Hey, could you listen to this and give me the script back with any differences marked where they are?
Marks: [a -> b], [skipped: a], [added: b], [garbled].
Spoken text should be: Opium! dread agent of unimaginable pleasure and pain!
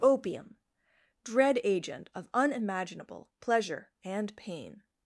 Opium! dread agent of unimaginable pleasure and pain!